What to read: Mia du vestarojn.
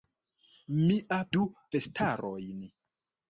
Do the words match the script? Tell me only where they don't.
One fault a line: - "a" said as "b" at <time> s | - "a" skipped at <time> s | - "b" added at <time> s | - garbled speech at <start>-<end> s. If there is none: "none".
none